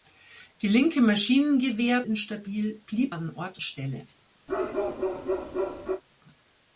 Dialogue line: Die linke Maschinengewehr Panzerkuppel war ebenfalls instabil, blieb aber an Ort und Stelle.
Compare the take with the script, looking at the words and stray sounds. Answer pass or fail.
fail